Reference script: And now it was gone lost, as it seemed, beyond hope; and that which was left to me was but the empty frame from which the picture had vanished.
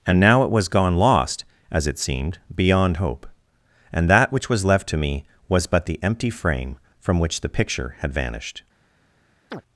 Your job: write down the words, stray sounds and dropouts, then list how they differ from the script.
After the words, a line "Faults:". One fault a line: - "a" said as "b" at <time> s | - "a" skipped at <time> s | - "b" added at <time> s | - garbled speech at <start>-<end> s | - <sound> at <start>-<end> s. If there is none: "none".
And now it was gone lost, as it seemed, beyond hope; and that which was left to me was but the empty frame from which the picture had vanished.
Faults:
- chirp at 9.5-9.6 s